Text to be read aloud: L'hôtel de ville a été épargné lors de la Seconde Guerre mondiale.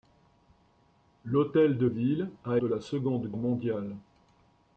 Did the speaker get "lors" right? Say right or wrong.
wrong